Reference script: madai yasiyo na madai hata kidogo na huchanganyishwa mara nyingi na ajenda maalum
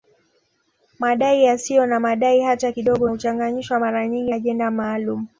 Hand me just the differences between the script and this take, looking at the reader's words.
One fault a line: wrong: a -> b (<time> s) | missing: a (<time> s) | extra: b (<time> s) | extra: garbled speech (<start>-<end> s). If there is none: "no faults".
missing: na (3.1 s)
missing: na (4.3 s)